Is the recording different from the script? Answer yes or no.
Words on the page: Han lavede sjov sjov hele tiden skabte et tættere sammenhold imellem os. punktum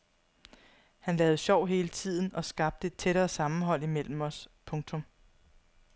yes